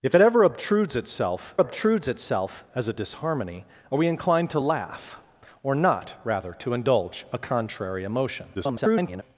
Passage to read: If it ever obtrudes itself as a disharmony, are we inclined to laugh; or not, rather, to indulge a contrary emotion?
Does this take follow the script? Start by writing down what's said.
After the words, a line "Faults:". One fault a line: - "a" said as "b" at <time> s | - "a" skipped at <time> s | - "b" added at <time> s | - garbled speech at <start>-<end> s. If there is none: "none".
If it ever obtrudes itself obtrudes itself as a disharmony, are we inclined to laugh; or not, rather, to indulge a contrary emotion? [garbled]
Faults:
- "obtrudes itself" added at 1.6 s
- garbled speech at 8.5-9.2 s